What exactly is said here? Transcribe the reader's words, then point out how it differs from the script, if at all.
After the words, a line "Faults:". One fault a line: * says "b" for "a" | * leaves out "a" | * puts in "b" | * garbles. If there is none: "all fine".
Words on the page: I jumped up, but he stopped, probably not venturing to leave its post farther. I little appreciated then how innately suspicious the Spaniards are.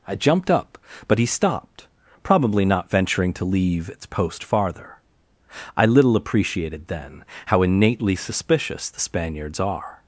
I jumped up, but he stopped, probably not venturing to leave its post farther. I little appreciated then how innately suspicious the Spaniards are.
Faults:
all fine